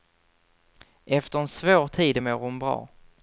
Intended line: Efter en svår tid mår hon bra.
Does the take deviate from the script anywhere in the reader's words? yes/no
no